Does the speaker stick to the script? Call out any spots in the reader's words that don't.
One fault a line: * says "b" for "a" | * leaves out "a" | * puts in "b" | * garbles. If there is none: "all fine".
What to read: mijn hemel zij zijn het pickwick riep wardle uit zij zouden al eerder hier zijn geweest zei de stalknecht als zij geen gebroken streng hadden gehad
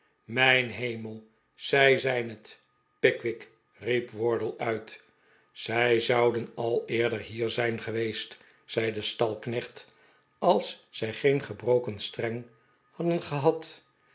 all fine